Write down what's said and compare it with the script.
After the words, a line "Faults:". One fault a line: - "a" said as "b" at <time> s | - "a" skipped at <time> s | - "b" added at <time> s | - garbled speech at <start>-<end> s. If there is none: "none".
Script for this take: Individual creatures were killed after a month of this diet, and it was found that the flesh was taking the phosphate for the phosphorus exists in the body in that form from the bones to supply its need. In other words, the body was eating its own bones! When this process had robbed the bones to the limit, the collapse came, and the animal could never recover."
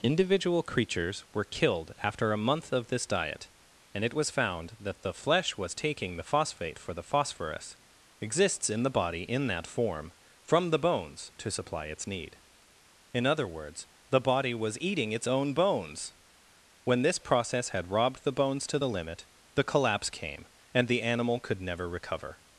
Individual creatures were killed after a month of this diet, and it was found that the flesh was taking the phosphate for the phosphorus exists in the body in that form from the bones to supply its need. In other words, the body was eating its own bones! When this process had robbed the bones to the limit, the collapse came, and the animal could never recover."
Faults:
none